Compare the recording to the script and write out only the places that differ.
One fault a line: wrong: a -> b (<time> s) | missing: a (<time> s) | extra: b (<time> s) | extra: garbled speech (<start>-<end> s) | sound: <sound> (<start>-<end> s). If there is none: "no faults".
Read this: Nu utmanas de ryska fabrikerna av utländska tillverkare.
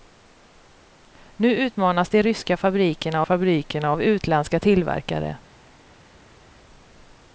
extra: fabrikerna (3.2 s)